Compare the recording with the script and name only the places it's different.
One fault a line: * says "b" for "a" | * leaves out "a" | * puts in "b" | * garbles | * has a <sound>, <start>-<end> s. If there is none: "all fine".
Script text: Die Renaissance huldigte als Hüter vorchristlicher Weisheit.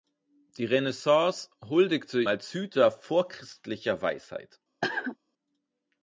* has a cough, 4.8-5.2 s